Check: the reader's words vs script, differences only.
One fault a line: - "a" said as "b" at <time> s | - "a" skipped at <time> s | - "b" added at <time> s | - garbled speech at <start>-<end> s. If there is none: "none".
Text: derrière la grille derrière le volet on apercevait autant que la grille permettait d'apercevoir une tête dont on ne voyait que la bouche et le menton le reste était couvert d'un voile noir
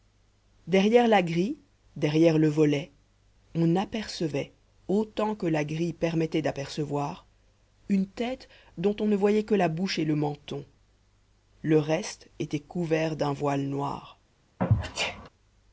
none